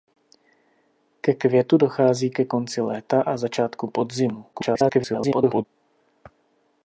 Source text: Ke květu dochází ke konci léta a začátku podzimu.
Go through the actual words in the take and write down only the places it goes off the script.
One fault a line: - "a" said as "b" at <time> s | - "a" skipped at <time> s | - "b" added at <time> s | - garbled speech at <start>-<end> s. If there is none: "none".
- garbled speech at 4.5-5.6 s